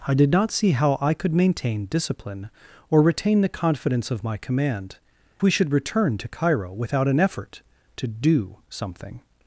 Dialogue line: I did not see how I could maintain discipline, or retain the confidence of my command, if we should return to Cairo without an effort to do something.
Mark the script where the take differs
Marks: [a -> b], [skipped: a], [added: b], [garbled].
I did not see how I could maintain discipline, or retain the confidence of my command, [skipped: if] we should return to Cairo without an effort to do something.